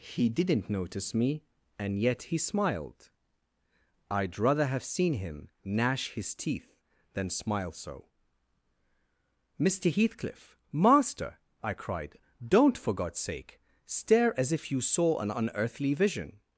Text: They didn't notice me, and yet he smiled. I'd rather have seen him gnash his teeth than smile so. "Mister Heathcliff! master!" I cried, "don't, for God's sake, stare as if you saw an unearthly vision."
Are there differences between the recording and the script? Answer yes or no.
yes